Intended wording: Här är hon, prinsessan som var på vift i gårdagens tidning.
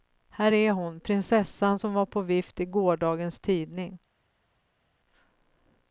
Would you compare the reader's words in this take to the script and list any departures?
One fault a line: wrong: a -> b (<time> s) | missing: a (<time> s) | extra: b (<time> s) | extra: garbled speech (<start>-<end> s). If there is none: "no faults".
no faults